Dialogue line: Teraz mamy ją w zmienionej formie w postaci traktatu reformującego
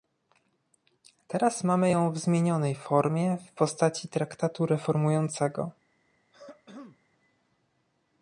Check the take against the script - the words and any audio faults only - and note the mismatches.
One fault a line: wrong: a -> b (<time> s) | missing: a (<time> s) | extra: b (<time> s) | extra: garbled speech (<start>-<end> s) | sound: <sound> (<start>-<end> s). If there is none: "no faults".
sound: throat clearing (6.3-7.0 s)